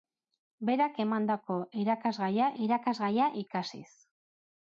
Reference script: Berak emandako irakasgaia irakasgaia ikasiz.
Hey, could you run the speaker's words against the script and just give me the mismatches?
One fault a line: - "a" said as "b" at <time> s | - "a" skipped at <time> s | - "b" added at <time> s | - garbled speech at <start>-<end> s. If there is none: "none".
none